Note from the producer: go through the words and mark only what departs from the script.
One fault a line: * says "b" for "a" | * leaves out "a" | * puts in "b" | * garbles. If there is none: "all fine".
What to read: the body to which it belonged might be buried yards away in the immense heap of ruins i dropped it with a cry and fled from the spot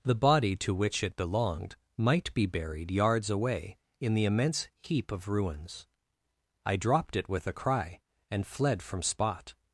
* leaves out "the"